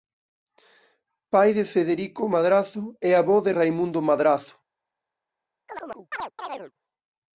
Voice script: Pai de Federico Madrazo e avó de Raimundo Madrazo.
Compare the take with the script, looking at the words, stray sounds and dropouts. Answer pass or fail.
fail